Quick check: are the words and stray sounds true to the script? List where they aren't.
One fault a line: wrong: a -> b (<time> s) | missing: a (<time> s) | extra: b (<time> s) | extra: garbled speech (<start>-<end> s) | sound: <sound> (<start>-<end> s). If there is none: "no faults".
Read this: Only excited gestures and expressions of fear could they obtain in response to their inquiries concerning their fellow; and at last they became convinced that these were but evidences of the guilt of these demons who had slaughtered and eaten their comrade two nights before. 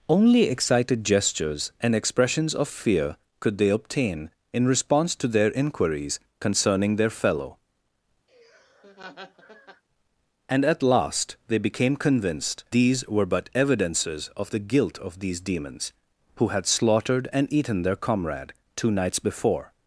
sound: laugh (8.3-9.8 s)
missing: that (12.6 s)